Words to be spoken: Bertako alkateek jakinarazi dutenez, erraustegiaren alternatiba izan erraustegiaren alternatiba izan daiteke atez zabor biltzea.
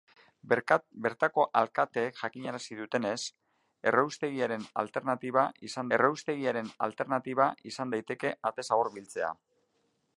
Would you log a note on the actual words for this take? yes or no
no